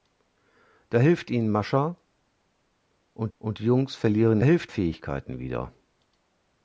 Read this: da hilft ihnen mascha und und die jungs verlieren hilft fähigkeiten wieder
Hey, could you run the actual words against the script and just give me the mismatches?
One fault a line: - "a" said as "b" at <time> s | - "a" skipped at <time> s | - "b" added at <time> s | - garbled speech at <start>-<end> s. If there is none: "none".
none